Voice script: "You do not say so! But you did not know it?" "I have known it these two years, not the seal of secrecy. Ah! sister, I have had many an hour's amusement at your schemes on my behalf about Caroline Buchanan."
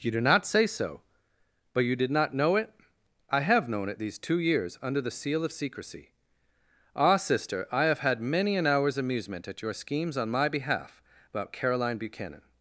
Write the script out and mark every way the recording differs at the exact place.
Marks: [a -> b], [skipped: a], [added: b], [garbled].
"You do not say so! But you did not know it?" "I have known it these two years, [not -> under] the seal of secrecy. Ah! sister, I have had many an hour's amusement at your schemes on my behalf about Caroline Buchanan."